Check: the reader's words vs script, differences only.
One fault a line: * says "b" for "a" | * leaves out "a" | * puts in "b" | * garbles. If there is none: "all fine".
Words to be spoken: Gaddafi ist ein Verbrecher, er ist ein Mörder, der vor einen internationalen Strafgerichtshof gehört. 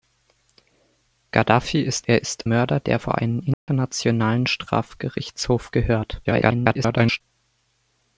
* leaves out "ein Verbrecher"
* leaves out "ein"
* garbles